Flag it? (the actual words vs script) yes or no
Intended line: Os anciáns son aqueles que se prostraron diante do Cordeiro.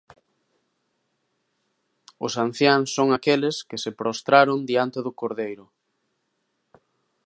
no